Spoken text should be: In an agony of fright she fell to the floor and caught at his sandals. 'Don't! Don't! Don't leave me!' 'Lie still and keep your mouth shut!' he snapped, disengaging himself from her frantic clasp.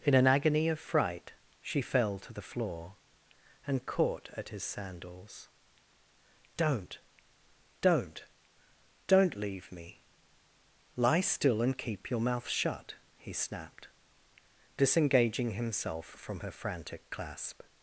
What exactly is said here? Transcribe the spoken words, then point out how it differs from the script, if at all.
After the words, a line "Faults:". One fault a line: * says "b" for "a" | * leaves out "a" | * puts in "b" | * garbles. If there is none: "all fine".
In an agony of fright she fell to the floor and caught at his sandals. 'Don't! Don't! Don't leave me!' 'Lie still and keep your mouth shut!' he snapped, disengaging himself from her frantic clasp.
Faults:
all fine